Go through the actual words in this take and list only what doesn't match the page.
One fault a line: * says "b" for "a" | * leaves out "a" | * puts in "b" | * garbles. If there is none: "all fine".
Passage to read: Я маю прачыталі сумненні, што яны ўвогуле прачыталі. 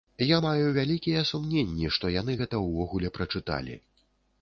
* says "вялікія" for "прачыталі"
* puts in "гэта"